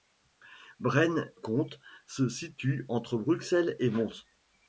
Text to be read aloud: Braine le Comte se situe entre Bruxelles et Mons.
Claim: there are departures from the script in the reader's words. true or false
true